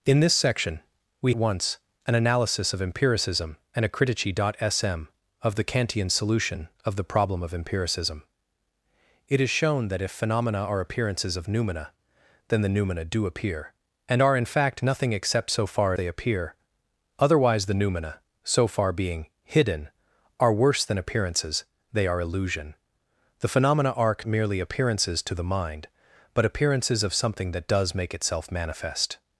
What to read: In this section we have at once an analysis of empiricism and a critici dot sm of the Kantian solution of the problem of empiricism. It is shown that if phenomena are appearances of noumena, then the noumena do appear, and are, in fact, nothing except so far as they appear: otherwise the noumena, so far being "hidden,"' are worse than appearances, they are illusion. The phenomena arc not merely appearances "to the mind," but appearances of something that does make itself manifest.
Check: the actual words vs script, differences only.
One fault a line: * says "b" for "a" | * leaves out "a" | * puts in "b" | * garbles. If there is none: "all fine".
* leaves out "have at"
* leaves out "as"
* leaves out "not"